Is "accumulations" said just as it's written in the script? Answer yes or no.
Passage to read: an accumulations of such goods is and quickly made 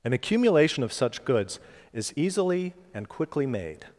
no